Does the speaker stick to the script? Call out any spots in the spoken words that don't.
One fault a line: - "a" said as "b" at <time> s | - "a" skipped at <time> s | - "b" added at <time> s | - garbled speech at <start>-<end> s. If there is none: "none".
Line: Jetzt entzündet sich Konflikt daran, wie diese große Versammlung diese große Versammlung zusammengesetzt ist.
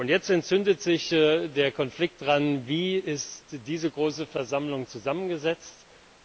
- "der" added at 1.1 s
- "diese große Versammlung" skipped at 4.9 s